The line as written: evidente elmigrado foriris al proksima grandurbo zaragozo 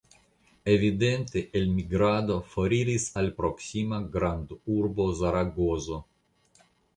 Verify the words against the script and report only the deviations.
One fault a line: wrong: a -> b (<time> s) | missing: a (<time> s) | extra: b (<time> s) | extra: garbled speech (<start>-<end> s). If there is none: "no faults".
no faults